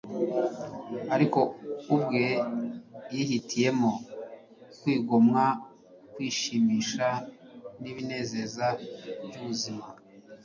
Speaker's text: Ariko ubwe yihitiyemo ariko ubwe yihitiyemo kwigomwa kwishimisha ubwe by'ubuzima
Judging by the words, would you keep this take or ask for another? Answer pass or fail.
fail